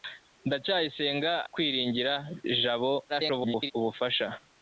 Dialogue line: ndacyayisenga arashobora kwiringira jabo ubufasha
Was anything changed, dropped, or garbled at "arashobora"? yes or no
yes